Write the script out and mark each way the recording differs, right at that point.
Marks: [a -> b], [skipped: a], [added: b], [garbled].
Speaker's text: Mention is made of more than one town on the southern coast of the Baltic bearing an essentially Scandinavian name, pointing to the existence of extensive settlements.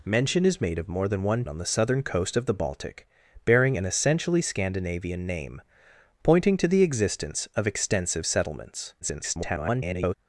Mention is made of more than one [skipped: town] on the southern coast of the Baltic bearing an essentially Scandinavian name, pointing to the existence of extensive settlements. [garbled]